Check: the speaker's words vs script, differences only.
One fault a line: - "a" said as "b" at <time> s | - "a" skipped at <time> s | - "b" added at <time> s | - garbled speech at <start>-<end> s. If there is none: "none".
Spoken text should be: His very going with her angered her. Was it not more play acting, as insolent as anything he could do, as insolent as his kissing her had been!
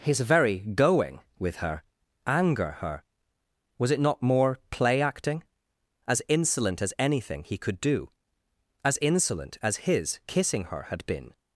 - "angered" said as "anger" at 2.2 s